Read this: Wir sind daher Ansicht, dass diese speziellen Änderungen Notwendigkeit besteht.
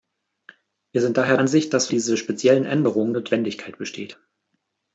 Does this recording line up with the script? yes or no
yes